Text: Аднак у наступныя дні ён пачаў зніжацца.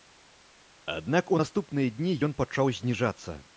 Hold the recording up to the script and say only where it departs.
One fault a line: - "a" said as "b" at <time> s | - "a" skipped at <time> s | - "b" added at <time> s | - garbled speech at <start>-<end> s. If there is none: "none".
none